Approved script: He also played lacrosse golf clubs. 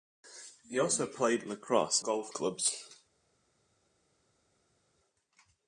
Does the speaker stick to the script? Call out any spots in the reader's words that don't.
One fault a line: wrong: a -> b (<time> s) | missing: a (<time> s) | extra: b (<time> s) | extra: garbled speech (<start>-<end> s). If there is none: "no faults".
no faults